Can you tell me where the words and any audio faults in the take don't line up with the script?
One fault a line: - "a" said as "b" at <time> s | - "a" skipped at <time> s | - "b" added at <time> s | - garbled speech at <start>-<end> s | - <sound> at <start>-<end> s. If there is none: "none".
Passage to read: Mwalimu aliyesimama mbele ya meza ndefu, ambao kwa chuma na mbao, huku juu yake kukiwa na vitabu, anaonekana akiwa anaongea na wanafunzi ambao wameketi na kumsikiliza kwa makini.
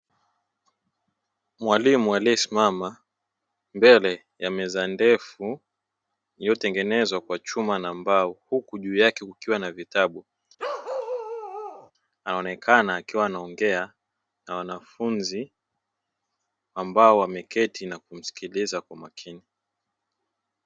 - "ambao" said as "iliyotengenezwa" at 6.4 s
- bark at 10.6-11.9 s